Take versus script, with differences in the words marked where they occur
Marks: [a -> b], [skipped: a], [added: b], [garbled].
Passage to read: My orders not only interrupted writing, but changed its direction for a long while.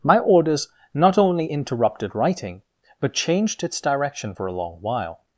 My orders not only interrupted writing, but changed its direction for a long while.